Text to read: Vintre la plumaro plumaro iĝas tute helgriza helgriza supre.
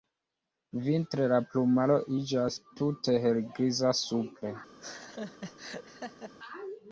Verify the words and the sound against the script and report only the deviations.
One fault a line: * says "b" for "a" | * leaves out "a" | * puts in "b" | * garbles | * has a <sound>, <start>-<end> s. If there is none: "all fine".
* leaves out "plumaro"
* leaves out "helgriza"
* has a laugh, 4.8-6.3 s